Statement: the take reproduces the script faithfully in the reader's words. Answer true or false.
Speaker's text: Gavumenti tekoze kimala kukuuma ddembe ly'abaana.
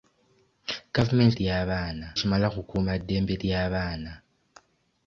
false